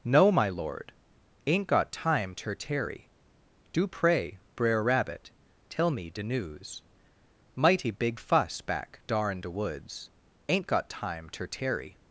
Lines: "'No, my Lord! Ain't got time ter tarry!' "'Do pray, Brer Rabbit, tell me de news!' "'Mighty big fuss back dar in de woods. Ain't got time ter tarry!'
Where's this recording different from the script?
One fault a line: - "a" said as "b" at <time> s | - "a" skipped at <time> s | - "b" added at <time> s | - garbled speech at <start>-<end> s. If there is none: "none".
none